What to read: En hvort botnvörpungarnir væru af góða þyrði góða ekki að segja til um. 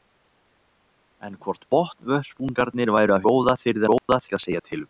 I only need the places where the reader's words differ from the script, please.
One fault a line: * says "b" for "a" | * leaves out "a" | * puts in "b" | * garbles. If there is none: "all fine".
all fine